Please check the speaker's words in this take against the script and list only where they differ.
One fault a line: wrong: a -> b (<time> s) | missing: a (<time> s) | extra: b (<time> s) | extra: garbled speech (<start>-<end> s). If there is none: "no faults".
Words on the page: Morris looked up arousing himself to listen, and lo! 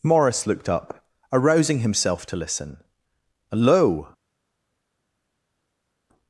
wrong: and lo -> hello (3.5 s)